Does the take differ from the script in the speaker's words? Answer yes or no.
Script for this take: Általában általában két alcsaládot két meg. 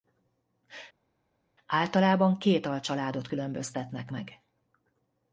yes